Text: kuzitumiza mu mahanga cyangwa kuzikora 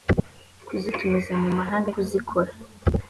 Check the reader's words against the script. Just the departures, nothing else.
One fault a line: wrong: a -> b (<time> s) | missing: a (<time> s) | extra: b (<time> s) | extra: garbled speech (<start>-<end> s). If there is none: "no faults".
missing: cyangwa (1.9 s)